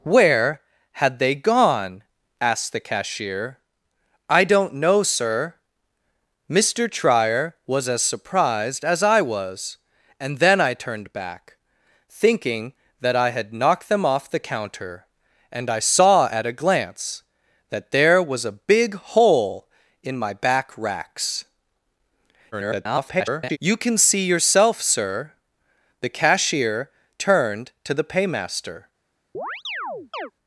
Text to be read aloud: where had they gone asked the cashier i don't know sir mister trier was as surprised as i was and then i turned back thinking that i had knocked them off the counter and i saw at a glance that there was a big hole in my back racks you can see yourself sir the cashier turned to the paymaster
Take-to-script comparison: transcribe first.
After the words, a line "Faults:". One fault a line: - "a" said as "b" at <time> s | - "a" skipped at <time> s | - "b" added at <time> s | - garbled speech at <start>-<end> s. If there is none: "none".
where had they gone asked the cashier i don't know sir mister trier was as surprised as i was and then i turned back thinking that i had knocked them off the counter and i saw at a glance that there was a big hole in my back racks [garbled] you can see yourself sir the cashier turned to the paymaster
Faults:
- garbled speech at 22.5-23.6 s